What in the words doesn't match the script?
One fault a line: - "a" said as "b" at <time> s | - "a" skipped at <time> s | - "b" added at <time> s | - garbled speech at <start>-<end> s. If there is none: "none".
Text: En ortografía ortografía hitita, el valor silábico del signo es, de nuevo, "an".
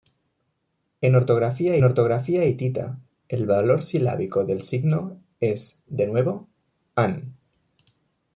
none